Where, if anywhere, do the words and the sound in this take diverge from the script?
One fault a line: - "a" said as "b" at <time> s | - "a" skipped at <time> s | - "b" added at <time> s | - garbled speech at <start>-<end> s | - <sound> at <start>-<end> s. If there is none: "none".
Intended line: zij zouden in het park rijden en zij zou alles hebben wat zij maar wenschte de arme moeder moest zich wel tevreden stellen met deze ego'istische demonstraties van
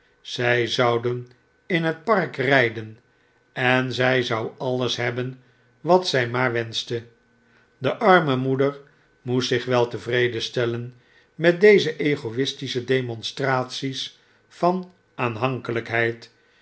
none